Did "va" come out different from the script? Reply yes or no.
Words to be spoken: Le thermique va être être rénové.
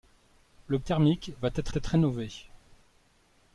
no